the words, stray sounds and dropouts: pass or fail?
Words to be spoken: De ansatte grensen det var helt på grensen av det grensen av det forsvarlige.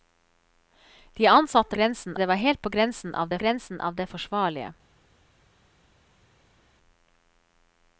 pass